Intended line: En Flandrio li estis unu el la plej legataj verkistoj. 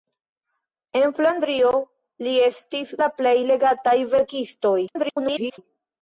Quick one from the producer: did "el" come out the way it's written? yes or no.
no